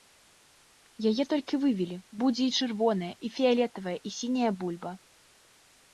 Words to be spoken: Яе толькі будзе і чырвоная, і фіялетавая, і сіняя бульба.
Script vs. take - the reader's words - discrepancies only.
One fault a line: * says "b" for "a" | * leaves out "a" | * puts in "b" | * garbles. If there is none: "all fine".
* puts in "вывелі"